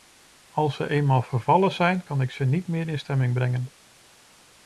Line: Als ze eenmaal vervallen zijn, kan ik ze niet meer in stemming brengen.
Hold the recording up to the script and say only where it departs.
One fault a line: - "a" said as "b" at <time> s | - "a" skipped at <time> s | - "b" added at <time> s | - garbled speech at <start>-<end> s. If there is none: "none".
none